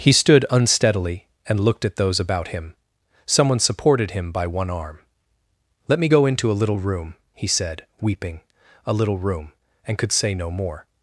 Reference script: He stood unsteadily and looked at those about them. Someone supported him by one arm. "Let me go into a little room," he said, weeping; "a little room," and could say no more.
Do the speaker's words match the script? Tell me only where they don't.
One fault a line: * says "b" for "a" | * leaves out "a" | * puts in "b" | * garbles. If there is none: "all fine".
* says "him" for "them"